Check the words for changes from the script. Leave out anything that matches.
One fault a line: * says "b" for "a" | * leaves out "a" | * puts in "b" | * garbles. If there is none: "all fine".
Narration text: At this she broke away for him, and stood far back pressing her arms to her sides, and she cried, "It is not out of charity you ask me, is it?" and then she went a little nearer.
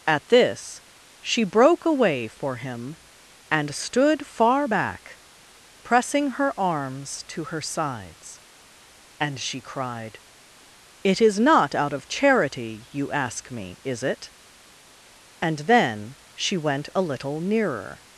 all fine